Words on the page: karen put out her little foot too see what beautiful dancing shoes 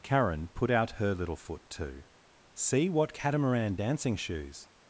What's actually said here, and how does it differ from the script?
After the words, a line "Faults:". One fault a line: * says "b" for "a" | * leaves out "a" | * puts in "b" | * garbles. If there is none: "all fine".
karen put out her little foot too see what catamaran dancing shoes
Faults:
* says "catamaran" for "beautiful"